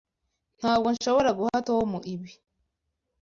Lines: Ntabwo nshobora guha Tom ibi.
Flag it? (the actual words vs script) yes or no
no